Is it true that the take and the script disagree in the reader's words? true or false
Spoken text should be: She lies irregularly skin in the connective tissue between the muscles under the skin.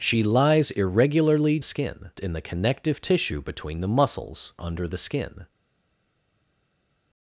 false